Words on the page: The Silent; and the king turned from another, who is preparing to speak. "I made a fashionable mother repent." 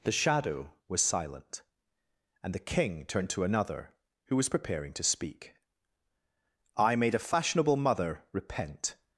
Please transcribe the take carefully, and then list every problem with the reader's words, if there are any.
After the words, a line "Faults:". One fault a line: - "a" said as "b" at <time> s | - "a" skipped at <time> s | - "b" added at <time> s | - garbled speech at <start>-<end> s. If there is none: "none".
The Shadow was silent; and the king turned to another, who was preparing to speak. "I made a fashionable mother repent."
Faults:
- "Shadow was" added at 0.1 s
- "from" said as "to" at 3.3 s
- "is" said as "was" at 4.3 s